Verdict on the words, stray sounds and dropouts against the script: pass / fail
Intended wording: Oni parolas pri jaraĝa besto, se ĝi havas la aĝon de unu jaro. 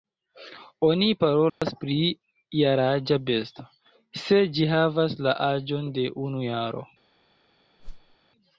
fail